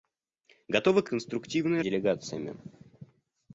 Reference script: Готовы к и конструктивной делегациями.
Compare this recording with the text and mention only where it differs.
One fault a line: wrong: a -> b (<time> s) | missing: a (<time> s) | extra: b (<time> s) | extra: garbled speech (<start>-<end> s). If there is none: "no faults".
no faults